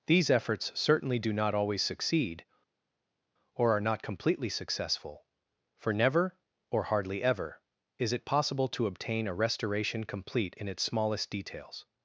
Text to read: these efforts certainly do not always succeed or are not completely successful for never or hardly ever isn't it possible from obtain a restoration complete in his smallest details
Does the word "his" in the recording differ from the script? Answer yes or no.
yes